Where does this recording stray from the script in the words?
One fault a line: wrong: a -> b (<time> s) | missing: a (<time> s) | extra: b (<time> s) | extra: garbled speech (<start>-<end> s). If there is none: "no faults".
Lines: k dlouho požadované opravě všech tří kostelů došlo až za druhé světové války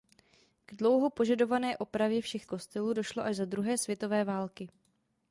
missing: tří (2.5 s)